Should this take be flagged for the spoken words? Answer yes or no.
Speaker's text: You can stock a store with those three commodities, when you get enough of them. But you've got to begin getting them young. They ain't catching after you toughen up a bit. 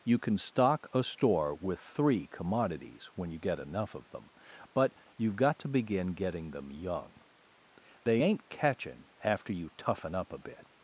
yes